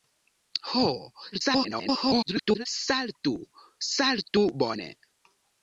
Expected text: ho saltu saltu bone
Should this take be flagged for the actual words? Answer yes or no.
yes